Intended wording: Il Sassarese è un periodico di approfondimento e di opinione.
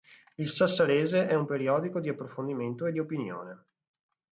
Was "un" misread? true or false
false